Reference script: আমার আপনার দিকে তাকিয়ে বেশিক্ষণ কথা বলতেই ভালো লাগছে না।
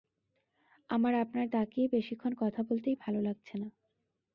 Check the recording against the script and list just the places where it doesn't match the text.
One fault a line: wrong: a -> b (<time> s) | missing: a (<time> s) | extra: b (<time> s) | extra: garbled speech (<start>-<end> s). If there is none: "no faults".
missing: দিকে (1.5 s)